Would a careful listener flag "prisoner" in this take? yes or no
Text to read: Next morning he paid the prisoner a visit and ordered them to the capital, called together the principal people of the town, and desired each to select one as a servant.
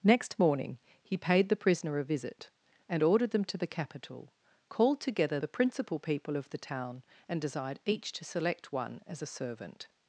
no